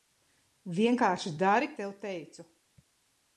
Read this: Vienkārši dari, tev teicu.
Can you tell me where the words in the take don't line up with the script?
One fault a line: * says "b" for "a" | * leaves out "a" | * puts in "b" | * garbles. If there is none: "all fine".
all fine